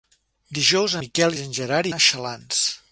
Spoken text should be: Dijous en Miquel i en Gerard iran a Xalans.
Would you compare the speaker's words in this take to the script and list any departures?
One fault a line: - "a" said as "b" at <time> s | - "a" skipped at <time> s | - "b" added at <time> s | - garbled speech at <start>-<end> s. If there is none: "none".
- "en" skipped at 0.9 s
- "iran" skipped at 1.9 s